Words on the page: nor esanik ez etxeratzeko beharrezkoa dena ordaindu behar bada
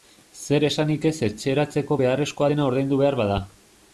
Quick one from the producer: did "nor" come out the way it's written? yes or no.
no